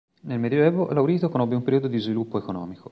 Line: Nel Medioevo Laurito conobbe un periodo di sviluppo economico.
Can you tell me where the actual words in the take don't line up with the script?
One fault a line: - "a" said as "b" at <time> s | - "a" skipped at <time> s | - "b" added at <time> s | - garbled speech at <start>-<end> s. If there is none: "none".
none